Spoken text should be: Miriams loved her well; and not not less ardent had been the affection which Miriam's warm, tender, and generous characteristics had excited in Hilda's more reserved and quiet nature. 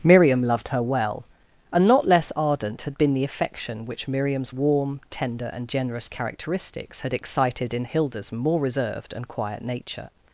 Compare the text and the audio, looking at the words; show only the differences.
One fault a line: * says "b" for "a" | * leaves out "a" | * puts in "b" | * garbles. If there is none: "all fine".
* says "Miriam" for "Miriams"
* leaves out "not"